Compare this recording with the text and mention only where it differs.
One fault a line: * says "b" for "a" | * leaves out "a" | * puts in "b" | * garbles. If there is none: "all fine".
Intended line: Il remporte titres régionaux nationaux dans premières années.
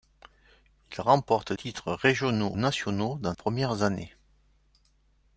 all fine